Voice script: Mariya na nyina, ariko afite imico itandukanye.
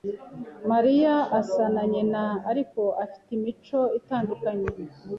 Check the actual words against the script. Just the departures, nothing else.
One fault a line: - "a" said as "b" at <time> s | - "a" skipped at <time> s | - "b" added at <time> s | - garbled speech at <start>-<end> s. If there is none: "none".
- "asa" added at 1.4 s